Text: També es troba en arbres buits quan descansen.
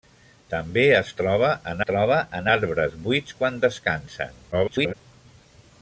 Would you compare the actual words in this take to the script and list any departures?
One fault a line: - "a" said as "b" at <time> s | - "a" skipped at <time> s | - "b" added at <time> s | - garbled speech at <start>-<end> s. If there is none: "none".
- "troba en" added at 1.9 s
- garbled speech at 4.5-4.9 s